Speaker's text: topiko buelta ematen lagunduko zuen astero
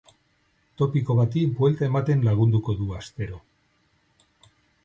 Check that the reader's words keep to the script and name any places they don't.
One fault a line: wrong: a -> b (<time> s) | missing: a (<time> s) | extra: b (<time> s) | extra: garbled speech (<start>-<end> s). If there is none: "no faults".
extra: bati (1.2 s)
wrong: zuen -> du (2.8 s)